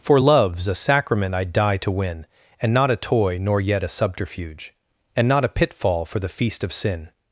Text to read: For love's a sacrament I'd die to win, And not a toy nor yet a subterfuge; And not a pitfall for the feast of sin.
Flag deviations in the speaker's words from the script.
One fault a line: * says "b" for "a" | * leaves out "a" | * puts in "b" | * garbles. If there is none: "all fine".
all fine